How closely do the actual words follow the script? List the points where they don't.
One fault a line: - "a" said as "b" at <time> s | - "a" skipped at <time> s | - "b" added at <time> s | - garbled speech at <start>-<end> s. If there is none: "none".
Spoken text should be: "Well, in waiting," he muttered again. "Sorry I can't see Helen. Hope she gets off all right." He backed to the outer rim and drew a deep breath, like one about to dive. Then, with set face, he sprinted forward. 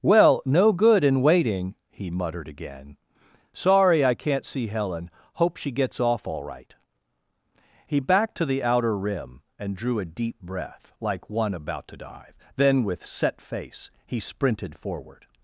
- "no good" added at 0.5 s